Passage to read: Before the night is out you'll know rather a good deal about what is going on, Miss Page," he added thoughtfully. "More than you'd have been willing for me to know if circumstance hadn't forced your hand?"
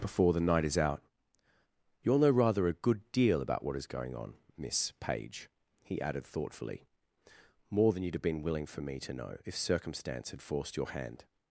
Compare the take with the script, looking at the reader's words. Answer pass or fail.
fail